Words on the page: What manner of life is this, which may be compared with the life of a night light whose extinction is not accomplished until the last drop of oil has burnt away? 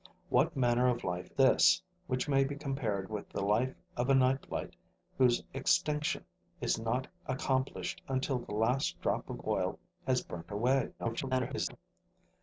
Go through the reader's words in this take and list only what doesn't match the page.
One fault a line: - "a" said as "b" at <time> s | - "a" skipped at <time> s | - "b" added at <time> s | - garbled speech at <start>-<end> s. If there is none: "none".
- "is" skipped at 1.3 s
- garbled speech at 11.0-11.8 s